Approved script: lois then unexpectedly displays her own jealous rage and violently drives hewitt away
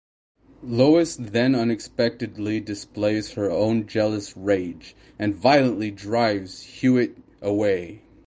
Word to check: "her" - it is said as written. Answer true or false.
true